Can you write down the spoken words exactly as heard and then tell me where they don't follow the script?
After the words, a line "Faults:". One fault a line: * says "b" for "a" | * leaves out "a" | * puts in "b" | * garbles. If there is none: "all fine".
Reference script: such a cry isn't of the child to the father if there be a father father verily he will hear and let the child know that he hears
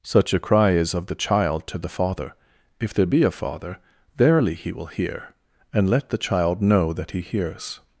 such a cry is of the child to the father if there be a father verily he will hear and let the child know that he hears
Faults:
* says "is" for "isn't"
* leaves out "father"